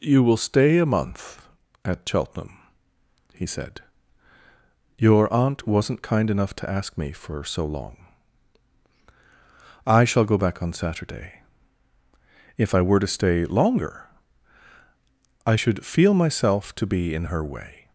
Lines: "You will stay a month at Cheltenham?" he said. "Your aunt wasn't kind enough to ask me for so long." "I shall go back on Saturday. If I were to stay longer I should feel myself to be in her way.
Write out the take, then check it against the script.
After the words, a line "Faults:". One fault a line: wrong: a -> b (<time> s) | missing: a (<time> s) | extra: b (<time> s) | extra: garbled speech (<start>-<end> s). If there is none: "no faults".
"You will stay a month at Cheltenham?" he said. "Your aunt wasn't kind enough to ask me for so long." "I shall go back on Saturday. If I were to stay longer I should feel myself to be in her way.
Faults:
no faults